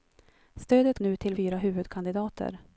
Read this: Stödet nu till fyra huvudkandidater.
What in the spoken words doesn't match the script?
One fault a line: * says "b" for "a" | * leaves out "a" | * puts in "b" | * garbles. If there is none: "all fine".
all fine